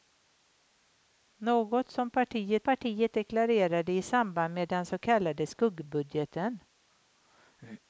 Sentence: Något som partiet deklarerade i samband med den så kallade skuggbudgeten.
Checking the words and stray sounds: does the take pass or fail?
fail